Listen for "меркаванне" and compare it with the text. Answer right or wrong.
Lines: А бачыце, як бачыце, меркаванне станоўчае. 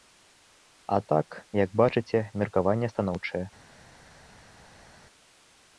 right